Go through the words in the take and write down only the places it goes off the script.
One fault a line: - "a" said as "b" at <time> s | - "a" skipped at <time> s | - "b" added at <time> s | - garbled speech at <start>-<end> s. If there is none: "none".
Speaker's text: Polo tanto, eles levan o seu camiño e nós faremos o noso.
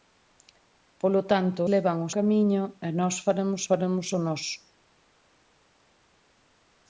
- "eles" skipped at 1.6 s
- "seu" skipped at 2.1 s
- "faremos" added at 3.7 s